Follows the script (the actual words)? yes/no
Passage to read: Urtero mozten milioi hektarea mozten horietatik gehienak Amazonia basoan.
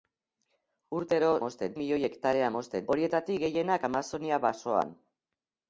yes